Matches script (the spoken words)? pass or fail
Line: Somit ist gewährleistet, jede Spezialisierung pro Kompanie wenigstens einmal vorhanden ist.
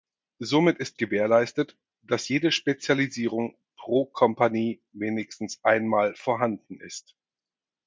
fail